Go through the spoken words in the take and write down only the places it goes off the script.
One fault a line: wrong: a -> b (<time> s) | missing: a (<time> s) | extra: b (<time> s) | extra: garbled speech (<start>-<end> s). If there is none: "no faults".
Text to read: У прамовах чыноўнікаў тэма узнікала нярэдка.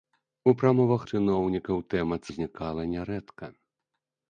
no faults